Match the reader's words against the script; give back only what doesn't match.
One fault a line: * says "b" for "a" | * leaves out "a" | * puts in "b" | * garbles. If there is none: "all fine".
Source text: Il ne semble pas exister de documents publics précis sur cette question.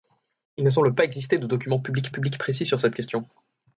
* puts in "publics"